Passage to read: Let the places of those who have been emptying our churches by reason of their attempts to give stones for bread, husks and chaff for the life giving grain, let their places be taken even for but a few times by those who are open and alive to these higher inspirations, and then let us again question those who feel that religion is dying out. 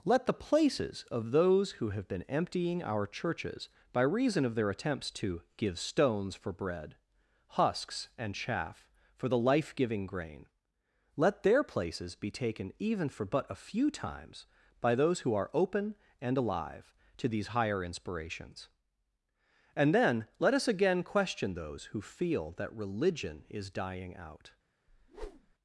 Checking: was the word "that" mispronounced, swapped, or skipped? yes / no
no